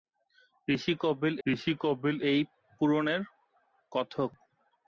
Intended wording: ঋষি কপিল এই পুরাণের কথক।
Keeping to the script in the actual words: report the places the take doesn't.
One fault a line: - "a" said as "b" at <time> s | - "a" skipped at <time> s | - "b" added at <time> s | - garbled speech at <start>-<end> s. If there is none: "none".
- "ঋষি কপিল" added at 1.4 s